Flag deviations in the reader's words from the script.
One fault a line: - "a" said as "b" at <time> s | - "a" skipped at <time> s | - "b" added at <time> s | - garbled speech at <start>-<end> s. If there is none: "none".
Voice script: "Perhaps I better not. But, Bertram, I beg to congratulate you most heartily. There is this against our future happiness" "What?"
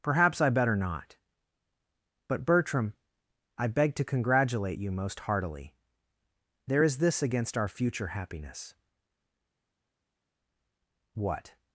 none